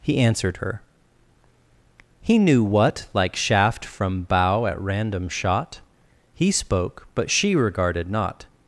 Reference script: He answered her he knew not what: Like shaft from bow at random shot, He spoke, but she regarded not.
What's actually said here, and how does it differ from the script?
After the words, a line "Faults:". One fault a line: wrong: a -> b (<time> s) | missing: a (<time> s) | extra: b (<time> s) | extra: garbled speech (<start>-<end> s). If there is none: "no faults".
He answered her he knew what: Like shaft from bow at random shot, He spoke, but she regarded not.
Faults:
missing: not (2.6 s)